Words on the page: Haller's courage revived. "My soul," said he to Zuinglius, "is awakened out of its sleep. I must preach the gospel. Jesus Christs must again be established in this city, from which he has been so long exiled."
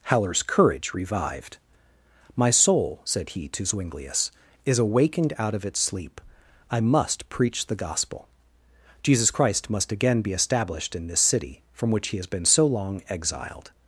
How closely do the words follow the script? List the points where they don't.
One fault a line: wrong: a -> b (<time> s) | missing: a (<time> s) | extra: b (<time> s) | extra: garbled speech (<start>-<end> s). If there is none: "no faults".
wrong: Christs -> Christ (9.3 s)